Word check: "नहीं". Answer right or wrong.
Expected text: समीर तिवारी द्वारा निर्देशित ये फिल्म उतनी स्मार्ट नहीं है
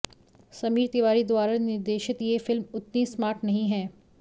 right